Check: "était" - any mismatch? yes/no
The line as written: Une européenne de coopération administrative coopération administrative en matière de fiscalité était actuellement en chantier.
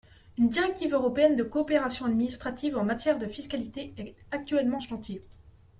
yes